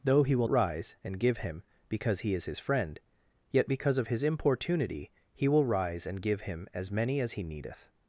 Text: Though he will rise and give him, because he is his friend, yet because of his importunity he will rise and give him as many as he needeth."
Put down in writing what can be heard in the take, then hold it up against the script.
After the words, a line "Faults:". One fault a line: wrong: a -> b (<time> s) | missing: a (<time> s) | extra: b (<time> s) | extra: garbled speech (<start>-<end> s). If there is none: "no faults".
Though he will rise and give him, because he is his friend, yet because of his importunity he will rise and give him as many as he needeth."
Faults:
no faults